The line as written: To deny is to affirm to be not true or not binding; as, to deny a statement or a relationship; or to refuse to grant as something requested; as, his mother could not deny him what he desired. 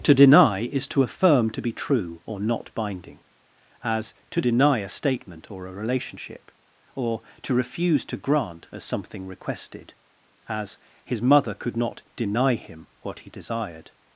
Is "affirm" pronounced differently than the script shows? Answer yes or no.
no